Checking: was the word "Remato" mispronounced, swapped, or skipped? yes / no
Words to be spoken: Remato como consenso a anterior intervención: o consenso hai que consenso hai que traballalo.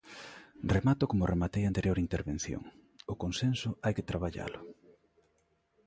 no